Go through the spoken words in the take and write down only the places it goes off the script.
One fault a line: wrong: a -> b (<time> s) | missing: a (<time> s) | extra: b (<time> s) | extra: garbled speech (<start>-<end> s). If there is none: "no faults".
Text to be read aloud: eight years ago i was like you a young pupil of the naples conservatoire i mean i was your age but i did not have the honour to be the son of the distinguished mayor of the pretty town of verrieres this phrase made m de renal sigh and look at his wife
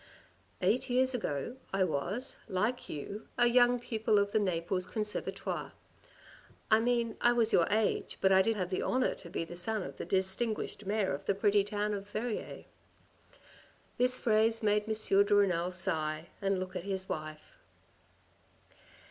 missing: not (8.6 s)